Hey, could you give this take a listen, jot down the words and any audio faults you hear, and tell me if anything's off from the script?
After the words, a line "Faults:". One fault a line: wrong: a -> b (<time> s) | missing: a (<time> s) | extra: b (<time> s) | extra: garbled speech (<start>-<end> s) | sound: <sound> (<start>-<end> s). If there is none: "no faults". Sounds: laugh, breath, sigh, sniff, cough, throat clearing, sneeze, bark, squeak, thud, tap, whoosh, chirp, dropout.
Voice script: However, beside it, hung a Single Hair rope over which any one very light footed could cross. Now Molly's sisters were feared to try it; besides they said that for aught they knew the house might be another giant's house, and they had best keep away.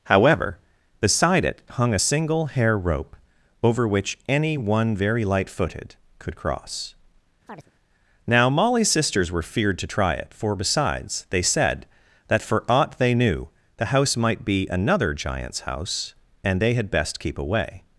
However, beside it, hung a Single Hair rope over which any one very light footed could cross. Now Molly's sisters were feared to try it; for besides they said that for aught they knew the house might be another giant's house, and they had best keep away.
Faults:
sound: chirp (7.5-7.7 s)
extra: for (10.3 s)